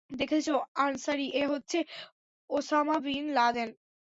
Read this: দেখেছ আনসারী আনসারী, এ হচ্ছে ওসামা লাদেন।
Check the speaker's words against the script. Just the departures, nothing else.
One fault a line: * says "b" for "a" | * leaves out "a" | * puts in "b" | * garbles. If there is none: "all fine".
* leaves out "আনসারী"
* puts in "বিন"